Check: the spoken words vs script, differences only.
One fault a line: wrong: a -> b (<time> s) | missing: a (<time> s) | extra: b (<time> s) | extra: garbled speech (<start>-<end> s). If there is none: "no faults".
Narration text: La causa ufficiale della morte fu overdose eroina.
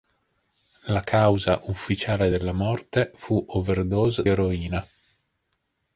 no faults